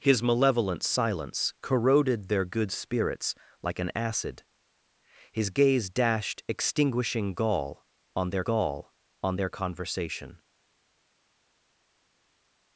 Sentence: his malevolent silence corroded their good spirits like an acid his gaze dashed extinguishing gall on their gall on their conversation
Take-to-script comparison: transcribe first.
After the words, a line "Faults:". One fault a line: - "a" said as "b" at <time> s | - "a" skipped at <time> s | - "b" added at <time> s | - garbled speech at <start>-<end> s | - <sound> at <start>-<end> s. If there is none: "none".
his malevolent silence corroded their good spirits like an acid his gaze dashed extinguishing gall on their gall on their conversation
Faults:
none